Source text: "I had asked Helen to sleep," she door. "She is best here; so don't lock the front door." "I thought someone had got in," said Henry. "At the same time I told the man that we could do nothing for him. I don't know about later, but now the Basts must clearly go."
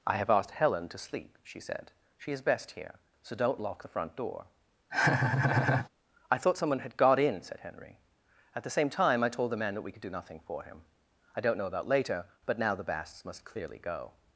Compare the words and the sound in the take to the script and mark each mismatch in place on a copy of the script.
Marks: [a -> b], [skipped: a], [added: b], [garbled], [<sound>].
"I [had -> have] asked Helen to sleep," she [door. -> said] "She is best here; so don't lock the front door." [laugh] "I thought someone had got in," said Henry. "At the same time I told the man that we could do nothing for him. I don't know about later, but now the Basts must clearly go."